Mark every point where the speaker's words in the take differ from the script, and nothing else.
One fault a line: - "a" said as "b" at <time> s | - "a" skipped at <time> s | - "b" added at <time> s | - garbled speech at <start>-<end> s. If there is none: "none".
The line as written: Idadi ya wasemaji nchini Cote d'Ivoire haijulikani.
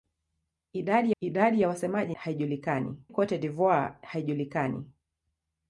- "idadi" added at 1.2 s
- "nchini" said as "haijulikani" at 2.1 s